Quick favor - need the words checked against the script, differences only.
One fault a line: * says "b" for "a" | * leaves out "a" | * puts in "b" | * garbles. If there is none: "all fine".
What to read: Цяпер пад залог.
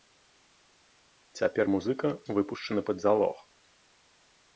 * puts in "музыка выпушчаны"